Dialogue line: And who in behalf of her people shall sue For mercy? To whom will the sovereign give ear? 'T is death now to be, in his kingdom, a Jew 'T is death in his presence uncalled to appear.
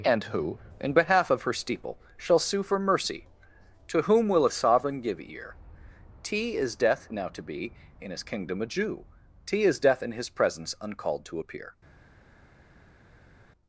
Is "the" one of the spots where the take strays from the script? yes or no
yes